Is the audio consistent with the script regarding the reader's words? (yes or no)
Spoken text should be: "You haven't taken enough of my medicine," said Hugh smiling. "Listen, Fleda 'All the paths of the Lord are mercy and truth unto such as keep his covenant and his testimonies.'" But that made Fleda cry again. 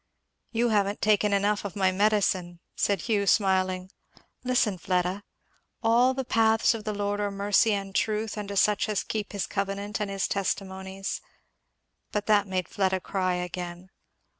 yes